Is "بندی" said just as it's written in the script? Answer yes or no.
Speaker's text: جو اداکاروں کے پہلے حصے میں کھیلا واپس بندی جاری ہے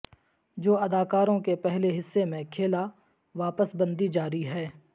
yes